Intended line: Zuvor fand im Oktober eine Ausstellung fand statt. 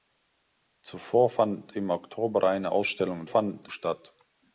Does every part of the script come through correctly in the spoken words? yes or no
yes